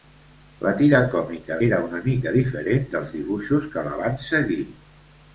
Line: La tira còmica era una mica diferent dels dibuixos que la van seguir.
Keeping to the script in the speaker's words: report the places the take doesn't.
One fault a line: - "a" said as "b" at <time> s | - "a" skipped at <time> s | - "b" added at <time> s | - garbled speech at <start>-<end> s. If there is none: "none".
none